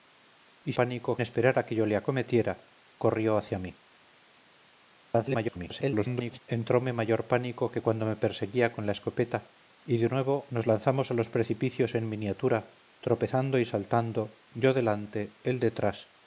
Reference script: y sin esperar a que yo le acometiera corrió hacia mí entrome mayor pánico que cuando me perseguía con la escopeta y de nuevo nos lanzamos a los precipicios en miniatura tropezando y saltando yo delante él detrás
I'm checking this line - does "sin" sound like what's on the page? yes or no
no